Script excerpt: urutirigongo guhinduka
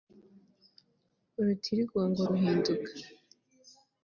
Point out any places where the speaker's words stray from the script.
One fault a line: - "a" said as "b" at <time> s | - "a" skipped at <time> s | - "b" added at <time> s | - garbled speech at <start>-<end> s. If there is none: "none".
none